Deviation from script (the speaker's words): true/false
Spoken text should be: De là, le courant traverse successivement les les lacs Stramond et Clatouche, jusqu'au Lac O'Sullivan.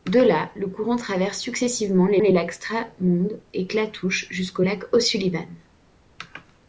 false